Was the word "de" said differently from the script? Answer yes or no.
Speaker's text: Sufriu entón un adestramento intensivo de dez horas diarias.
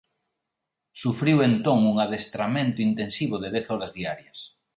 no